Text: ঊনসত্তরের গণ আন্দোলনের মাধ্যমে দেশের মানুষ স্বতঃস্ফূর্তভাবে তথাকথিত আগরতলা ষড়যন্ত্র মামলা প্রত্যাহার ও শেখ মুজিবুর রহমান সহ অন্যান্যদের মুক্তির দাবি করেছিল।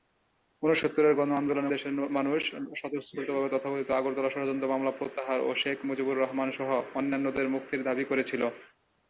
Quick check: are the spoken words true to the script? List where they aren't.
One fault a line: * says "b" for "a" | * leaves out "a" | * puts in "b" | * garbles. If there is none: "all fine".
* leaves out "মাধ্যমে"